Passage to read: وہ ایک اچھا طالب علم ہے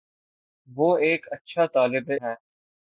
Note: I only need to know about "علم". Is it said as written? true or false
false